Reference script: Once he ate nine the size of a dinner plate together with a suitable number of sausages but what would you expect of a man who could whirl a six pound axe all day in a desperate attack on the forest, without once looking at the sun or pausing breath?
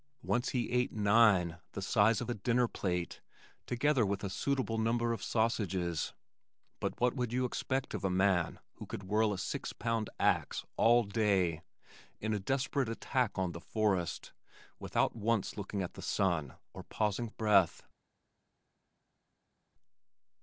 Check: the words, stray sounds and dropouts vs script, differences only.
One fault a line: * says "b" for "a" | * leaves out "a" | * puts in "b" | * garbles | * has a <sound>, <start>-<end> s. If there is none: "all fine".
all fine